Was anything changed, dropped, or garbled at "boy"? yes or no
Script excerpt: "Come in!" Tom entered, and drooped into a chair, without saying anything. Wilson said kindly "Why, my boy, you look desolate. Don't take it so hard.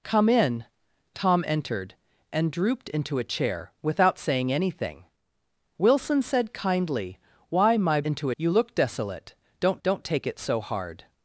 yes